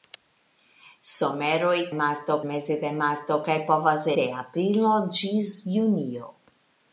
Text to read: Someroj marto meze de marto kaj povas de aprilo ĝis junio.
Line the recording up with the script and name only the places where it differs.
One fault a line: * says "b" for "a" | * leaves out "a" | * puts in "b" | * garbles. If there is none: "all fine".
all fine